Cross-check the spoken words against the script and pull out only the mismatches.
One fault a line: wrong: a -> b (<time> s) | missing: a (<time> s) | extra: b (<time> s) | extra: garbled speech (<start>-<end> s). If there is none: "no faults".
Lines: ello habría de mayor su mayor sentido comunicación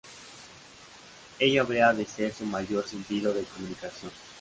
wrong: mayor -> ser (2.1 s)
extra: de (3.3 s)